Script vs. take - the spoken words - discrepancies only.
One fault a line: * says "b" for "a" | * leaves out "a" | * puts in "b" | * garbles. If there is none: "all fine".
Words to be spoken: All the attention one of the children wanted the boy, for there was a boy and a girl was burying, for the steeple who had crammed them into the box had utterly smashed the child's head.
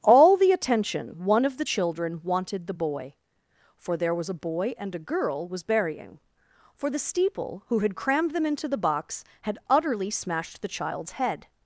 all fine